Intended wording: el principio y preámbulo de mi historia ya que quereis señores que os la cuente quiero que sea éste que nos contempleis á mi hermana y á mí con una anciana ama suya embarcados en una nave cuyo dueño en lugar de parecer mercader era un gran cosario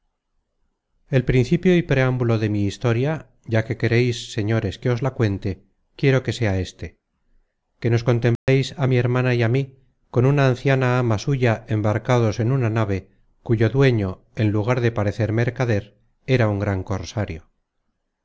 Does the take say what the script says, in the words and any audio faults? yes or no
no